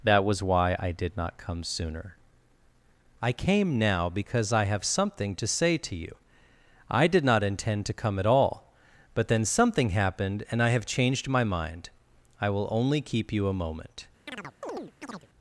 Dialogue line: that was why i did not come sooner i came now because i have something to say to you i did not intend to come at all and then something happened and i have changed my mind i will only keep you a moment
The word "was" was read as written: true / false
true